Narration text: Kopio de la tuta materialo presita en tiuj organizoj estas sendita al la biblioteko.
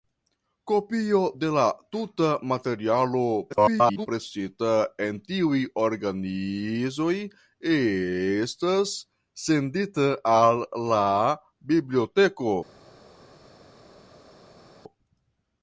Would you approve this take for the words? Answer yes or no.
no